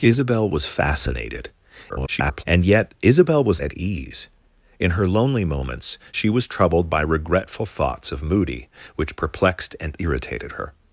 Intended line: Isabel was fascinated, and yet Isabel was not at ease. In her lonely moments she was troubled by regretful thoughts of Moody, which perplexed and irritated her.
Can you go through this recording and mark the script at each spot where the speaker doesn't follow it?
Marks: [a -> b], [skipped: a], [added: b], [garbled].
Isabel was fascinated, [garbled] and yet Isabel was [skipped: not] at ease. In her lonely moments she was troubled by regretful thoughts of Moody, which perplexed and irritated her.